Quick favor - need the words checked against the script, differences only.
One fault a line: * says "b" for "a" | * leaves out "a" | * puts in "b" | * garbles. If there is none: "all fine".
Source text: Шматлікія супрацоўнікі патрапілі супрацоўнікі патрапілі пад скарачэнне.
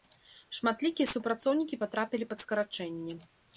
* leaves out "супрацоўнікі патрапілі"